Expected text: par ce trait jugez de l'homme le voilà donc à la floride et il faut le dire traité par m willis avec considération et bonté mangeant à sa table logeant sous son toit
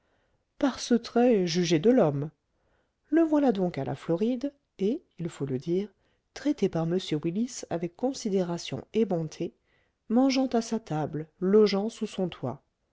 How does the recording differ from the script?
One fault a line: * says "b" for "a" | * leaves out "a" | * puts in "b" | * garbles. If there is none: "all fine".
all fine